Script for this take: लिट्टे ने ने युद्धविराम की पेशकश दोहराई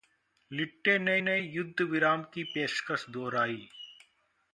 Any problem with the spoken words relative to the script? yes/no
no